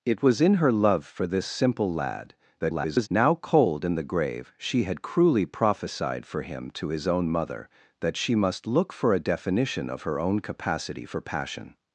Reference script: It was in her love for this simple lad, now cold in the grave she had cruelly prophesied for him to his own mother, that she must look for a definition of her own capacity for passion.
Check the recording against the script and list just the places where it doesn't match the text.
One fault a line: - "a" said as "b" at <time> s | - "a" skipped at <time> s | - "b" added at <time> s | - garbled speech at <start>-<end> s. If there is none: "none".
- garbled speech at 2.6-3.1 s